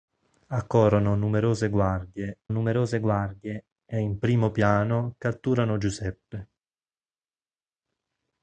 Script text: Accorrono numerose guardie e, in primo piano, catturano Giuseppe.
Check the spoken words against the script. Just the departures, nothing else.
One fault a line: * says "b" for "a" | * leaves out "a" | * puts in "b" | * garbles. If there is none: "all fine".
* puts in "numerose guardie"